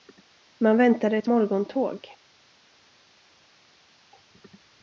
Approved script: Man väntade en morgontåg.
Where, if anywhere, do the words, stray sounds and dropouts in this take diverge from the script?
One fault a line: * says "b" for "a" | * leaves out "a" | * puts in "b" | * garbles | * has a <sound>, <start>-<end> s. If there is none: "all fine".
* says "ett" for "en"